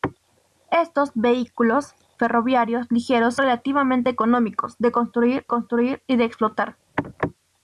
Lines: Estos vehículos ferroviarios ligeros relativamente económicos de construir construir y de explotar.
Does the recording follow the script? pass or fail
pass